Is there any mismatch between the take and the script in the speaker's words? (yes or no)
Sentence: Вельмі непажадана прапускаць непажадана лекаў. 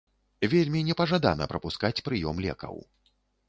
yes